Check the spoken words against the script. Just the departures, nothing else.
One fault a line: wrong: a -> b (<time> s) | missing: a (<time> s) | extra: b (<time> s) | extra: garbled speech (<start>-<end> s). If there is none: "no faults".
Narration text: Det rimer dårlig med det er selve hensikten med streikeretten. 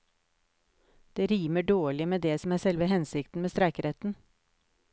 extra: som (2.4 s)